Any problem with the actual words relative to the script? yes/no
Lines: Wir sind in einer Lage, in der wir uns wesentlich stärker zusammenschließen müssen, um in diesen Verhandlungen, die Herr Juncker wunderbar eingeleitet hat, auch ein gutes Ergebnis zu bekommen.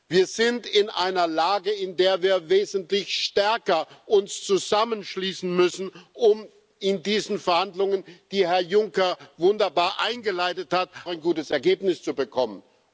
yes